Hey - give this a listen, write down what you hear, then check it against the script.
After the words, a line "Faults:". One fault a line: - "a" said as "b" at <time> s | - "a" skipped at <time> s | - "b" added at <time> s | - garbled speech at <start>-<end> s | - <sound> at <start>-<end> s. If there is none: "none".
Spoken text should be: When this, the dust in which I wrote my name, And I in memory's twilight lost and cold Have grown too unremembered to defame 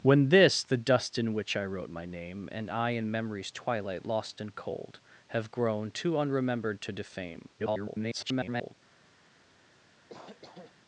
When this, the dust in which I wrote my name, And I in memory's twilight lost and cold Have grown too unremembered to defame [garbled]
Faults:
- garbled speech at 7.6-8.7 s
- cough at 10.1-10.8 s